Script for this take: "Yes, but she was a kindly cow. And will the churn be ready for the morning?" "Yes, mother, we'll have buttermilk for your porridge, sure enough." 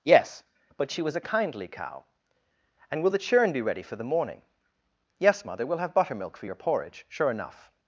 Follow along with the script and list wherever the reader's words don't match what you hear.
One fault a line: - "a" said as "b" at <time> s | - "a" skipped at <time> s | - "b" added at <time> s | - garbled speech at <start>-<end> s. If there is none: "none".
none